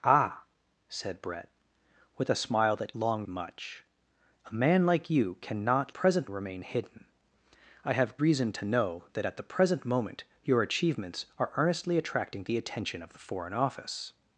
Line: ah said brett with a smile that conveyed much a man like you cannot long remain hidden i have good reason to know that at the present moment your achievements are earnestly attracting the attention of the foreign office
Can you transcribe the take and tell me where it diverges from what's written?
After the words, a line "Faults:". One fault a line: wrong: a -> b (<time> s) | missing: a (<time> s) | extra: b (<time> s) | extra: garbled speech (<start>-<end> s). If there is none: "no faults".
ah said brett with a smile that long much a man like you cannot present remain hidden i have reason to know that at the present moment your achievements are earnestly attracting the attention of the foreign office
Faults:
wrong: conveyed -> long (2.9 s)
wrong: long -> present (5.9 s)
missing: good (8.2 s)